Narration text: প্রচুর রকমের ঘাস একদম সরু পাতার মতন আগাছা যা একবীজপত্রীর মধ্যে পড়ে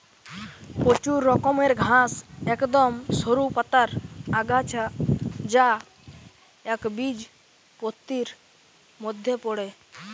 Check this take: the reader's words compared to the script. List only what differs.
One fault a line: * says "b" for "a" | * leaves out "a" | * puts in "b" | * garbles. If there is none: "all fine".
* leaves out "মতন"